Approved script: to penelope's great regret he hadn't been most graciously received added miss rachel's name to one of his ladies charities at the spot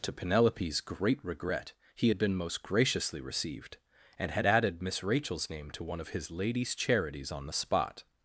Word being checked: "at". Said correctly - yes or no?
no